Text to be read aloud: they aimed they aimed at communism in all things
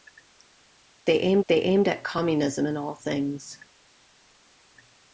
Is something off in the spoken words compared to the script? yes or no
no